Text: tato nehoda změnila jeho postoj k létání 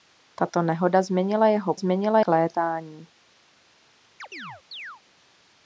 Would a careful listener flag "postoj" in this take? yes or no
yes